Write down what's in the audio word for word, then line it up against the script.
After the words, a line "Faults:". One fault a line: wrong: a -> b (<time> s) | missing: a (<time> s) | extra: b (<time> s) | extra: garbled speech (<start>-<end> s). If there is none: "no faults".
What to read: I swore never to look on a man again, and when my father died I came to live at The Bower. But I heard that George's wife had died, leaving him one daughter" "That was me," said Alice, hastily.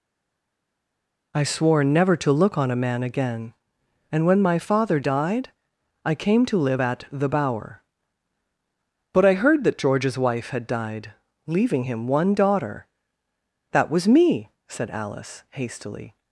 I swore never to look on a man again, and when my father died I came to live at The Bower. But I heard that George's wife had died, leaving him one daughter" "That was me," said Alice, hastily.
Faults:
no faults